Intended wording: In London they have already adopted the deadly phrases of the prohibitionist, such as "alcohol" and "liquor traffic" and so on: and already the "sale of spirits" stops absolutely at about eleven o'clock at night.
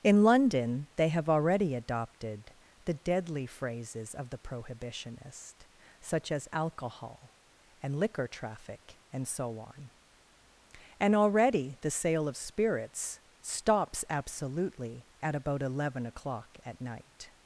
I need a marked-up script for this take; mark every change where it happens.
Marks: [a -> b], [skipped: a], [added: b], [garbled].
In London they have already adopted the deadly phrases of the prohibitionist, such as "alcohol" and "liquor traffic" and so on: and already the "sale of spirits" stops absolutely at about eleven o'clock at night.